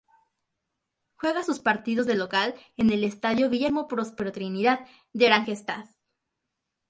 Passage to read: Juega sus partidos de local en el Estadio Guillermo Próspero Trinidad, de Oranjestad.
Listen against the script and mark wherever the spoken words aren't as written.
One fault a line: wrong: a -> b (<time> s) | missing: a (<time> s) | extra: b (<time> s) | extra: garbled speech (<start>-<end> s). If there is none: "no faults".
no faults